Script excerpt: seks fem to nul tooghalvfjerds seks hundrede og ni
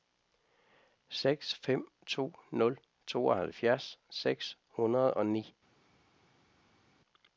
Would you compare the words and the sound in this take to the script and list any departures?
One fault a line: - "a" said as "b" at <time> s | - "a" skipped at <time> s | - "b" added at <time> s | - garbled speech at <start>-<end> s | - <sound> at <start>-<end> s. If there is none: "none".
none